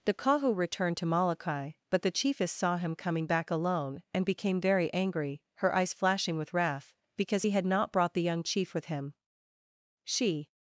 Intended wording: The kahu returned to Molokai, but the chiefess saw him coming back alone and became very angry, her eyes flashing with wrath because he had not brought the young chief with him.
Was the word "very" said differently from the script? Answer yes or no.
no